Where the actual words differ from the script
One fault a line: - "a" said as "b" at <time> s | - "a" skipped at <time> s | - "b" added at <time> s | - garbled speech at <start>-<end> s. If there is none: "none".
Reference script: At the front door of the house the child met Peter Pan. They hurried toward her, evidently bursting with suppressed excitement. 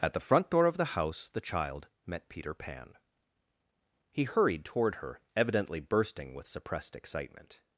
- "They" said as "He" at 4.1 s